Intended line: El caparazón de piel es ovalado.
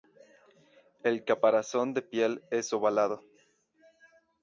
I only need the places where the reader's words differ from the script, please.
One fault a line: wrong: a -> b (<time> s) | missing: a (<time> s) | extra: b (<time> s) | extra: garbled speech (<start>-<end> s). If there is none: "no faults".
no faults